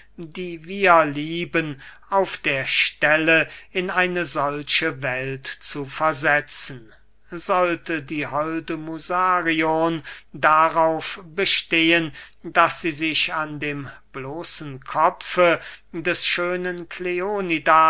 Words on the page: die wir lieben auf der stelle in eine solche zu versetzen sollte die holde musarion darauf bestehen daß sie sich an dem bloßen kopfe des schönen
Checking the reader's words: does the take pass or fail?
fail